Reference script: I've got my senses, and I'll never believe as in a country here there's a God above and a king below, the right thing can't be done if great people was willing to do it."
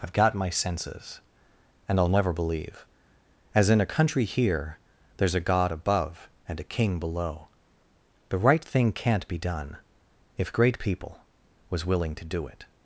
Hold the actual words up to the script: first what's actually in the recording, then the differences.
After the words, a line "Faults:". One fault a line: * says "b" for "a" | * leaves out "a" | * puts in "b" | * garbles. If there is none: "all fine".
I've got my senses, and I'll never believe as in a country here there's a God above and a king below, the right thing can't be done if great people was willing to do it."
Faults:
all fine